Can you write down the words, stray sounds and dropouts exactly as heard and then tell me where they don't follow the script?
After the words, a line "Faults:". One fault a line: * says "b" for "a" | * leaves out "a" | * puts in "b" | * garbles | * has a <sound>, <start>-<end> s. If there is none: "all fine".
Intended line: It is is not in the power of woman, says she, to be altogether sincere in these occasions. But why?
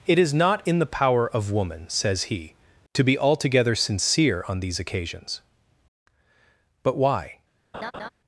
It is not in the power of woman, says he, to be altogether sincere on these occasions. But why?
Faults:
* leaves out "is"
* says "he" for "she"
* says "on" for "in"
* has a laugh, 7.7-8.1 s